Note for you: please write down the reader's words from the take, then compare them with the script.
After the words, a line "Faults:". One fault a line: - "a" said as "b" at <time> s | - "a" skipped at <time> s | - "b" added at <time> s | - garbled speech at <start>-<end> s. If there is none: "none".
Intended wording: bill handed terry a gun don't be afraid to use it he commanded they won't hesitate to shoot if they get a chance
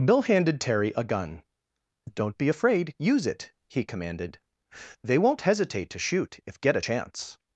bill handed terry a gun don't be afraid use it he commanded they won't hesitate to shoot if get a chance
Faults:
- "to" skipped at 2.9 s
- "they" skipped at 6.6 s